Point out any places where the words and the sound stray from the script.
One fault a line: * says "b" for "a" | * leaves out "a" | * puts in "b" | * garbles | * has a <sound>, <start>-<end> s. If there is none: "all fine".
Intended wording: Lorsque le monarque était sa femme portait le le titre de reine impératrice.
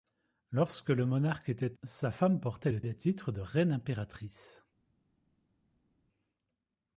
all fine